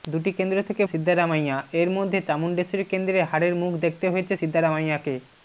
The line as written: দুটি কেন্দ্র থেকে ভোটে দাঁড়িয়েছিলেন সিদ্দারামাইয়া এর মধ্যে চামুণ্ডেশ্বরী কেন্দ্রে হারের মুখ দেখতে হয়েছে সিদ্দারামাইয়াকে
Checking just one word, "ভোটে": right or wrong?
wrong